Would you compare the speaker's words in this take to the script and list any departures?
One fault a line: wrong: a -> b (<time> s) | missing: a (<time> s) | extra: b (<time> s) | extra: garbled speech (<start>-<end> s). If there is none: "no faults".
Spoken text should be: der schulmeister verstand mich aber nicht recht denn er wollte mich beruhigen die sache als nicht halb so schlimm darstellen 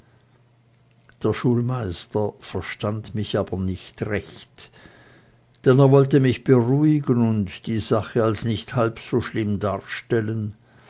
extra: und (7.3 s)